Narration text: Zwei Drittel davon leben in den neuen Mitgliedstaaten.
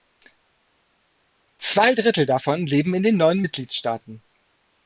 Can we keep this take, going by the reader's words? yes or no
yes